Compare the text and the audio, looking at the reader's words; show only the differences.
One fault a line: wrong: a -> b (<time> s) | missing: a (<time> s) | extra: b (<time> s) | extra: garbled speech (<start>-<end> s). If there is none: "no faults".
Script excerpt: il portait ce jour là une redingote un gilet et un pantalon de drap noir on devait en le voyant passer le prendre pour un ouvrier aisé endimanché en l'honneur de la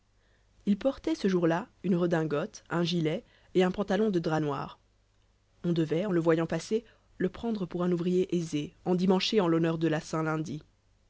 no faults